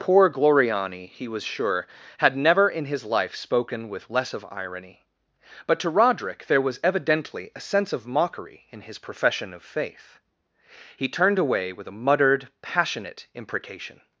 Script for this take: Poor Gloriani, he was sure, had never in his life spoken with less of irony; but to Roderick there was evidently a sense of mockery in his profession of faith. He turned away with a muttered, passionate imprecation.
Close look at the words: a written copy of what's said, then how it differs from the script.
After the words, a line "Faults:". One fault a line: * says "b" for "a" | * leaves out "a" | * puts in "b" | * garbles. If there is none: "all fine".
Poor Gloriani, he was sure, had never in his life spoken with less of irony; but to Roderick there was evidently a sense of mockery in his profession of faith. He turned away with a muttered, passionate imprecation.
Faults:
all fine